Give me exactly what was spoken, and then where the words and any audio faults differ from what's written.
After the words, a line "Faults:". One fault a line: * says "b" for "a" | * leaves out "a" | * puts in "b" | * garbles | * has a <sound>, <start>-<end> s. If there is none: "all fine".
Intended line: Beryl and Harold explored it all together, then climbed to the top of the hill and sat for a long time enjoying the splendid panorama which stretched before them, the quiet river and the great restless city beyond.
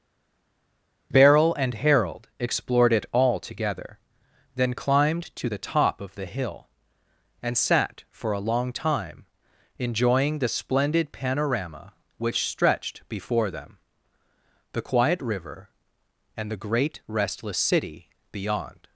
Beryl and Harold explored it all together, then climbed to the top of the hill and sat for a long time enjoying the splendid panorama which stretched before them, the quiet river and the great restless city beyond.
Faults:
all fine